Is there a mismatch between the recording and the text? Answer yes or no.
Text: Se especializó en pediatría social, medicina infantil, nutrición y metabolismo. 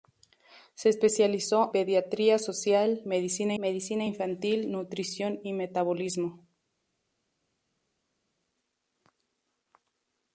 yes